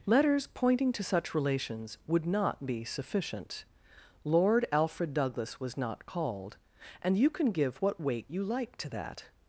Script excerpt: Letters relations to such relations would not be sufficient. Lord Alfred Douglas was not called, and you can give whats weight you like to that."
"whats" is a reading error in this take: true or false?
true